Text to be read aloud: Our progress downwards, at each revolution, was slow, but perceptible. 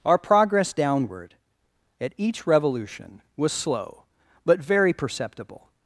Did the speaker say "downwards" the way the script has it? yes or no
no